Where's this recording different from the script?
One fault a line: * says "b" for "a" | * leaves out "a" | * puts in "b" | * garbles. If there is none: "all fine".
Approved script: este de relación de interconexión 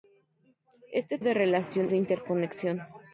all fine